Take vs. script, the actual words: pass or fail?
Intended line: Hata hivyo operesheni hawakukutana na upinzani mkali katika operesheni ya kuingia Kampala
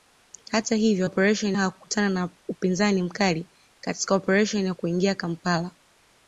pass